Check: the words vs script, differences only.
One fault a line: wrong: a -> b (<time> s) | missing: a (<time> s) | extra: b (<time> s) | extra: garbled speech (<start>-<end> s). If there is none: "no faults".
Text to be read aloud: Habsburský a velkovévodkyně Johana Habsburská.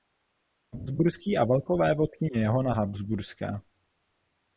no faults